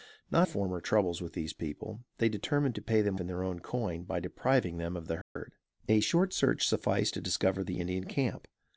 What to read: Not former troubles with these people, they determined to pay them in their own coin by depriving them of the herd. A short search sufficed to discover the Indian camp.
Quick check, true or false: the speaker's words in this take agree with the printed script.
true